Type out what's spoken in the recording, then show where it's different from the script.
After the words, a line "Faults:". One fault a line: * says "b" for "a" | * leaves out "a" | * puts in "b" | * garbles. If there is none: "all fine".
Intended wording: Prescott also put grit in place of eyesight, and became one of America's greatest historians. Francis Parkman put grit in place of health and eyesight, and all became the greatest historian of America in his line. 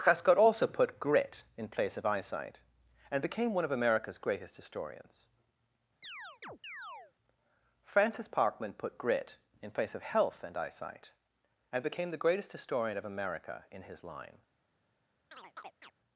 Prescott also put grit in place of eyesight, and became one of America's greatest historians. Francis Parkman put grit in place of health and eyesight, and became the greatest historian of America in his line.
Faults:
* leaves out "all"